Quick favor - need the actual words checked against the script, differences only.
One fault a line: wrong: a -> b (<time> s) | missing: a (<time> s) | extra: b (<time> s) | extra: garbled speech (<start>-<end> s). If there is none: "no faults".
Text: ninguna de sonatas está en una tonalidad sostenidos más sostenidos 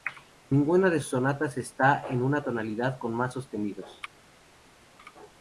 extra: sus (1.0 s)
wrong: sostenidos -> con (3.0 s)